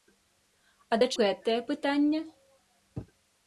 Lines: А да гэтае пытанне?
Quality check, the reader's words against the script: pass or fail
pass